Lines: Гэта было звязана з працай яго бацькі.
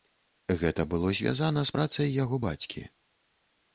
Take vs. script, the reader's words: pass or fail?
pass